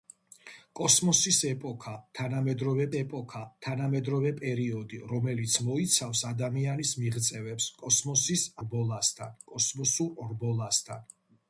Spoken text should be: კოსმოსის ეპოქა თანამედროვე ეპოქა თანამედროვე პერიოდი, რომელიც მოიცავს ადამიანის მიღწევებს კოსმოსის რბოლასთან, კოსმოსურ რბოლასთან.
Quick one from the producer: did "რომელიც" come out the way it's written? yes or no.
yes